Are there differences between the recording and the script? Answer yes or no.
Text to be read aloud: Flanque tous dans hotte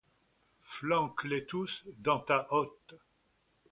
yes